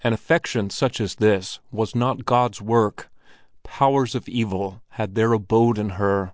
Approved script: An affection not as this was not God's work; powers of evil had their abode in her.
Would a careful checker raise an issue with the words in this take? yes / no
yes